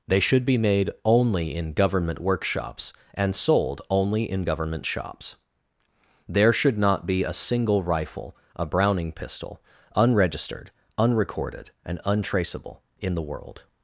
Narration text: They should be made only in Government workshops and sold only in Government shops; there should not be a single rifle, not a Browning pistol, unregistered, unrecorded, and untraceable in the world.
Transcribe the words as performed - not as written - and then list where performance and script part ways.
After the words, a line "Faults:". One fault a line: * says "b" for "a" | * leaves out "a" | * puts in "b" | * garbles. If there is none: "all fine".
They should be made only in Government workshops and sold only in Government shops; there should not be a single rifle, a Browning pistol, unregistered, unrecorded, and untraceable in the world.
Faults:
* leaves out "not"